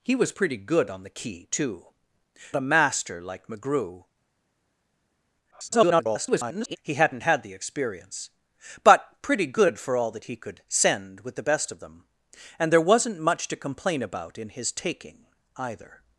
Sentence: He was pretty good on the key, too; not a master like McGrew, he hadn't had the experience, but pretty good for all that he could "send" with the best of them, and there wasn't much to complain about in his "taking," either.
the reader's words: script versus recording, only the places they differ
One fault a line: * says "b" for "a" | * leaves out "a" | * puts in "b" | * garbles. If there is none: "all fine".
* leaves out "not"
* garbles